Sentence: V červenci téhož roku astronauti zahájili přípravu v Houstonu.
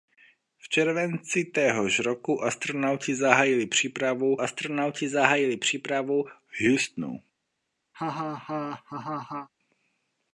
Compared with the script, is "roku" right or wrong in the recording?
right